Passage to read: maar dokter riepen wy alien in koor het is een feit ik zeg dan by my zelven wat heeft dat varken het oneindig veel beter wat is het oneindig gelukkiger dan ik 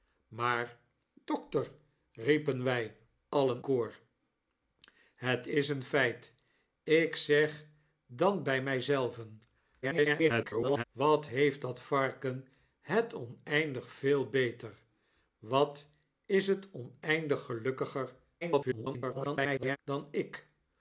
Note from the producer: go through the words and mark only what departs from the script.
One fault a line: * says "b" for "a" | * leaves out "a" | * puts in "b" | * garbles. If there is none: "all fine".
* leaves out "in"
* garbles
* garbles